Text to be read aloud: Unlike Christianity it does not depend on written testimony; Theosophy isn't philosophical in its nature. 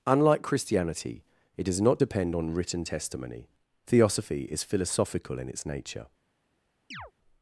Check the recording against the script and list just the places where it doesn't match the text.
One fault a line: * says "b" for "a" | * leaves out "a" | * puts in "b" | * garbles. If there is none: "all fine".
* says "is" for "isn't"